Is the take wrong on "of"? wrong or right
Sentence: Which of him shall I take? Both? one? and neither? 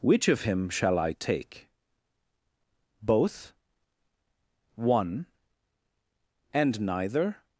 right